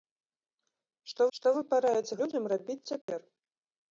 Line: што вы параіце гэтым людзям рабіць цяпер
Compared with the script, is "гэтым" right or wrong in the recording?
wrong